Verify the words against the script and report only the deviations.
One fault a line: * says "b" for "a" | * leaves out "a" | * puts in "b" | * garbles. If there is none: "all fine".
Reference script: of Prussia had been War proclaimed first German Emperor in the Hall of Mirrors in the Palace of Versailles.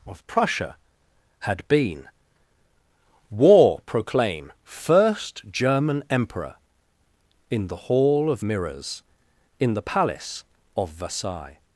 * says "proclaim" for "proclaimed"